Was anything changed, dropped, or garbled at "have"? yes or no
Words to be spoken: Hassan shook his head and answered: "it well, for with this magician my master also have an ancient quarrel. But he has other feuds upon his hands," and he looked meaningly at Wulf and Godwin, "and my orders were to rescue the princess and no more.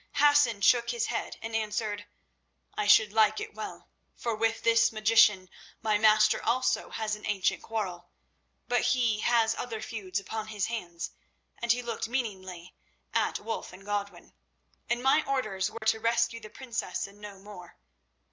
yes